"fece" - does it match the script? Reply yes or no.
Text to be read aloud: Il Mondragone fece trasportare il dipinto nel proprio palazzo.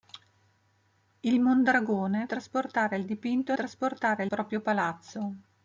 no